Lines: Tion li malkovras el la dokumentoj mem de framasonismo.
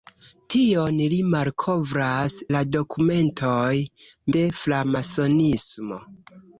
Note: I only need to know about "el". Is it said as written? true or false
false